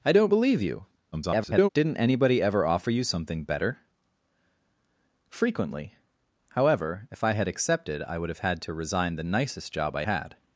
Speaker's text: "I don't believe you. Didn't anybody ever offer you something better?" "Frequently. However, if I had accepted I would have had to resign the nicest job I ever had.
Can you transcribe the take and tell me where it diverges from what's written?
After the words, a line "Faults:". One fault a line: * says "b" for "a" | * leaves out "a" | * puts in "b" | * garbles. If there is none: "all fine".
"I don't believe you. [garbled] Didn't anybody ever offer you something better?" "Frequently. However, if I had accepted I would have had to resign the nicest job I had.
Faults:
* garbles
* leaves out "ever"